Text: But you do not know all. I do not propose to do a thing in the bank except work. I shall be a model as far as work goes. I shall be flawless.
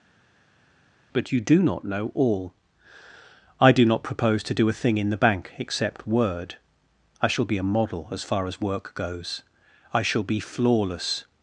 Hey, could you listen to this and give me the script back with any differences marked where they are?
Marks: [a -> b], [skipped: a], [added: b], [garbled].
But you do not know all. I do not propose to do a thing in the bank except [work. -> word] I shall be a model as far as work goes. I shall be flawless.